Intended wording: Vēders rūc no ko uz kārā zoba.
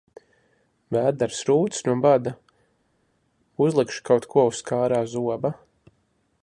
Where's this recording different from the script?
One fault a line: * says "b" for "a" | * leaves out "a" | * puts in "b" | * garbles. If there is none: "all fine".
* puts in "bada uzlikšu kaut"